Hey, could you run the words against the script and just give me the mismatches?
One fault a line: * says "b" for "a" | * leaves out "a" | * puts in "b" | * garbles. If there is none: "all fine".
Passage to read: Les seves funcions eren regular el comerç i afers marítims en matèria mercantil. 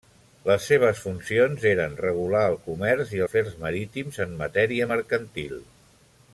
all fine